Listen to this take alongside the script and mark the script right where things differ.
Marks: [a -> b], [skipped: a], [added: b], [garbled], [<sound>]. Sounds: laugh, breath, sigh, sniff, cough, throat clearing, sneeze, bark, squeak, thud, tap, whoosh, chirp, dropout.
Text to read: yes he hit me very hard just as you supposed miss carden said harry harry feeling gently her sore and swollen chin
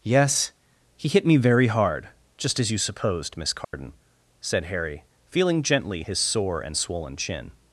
yes he hit me very hard just as you supposed miss carden [dropout] said harry [skipped: harry] feeling gently [her -> his] sore and swollen chin